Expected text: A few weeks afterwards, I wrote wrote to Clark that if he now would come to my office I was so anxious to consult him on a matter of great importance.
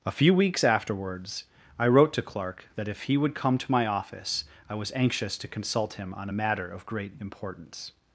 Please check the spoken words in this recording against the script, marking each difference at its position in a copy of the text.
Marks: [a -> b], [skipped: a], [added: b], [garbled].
A few weeks afterwards, I wrote [skipped: wrote] to Clark that if he [skipped: now] would come to my office I was [skipped: so] anxious to consult him on a matter of great importance.